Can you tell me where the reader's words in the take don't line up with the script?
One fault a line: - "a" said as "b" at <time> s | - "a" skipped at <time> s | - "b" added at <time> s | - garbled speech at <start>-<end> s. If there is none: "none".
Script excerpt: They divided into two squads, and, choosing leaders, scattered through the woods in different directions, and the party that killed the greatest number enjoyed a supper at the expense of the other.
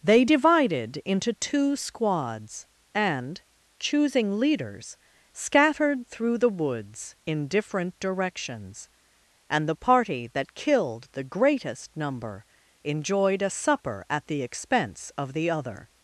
none